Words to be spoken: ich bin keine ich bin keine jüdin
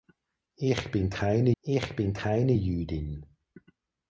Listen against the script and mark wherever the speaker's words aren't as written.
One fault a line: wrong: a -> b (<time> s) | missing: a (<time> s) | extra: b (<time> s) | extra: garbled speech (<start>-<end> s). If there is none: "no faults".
no faults